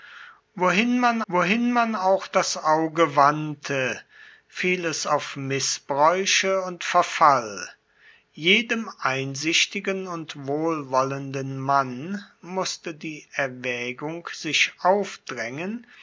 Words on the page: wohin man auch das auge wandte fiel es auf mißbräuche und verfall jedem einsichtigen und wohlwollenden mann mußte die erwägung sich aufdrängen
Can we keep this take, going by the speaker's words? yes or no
no